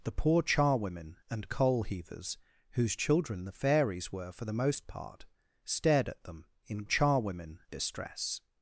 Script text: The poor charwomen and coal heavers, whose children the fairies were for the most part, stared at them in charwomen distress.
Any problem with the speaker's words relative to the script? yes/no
no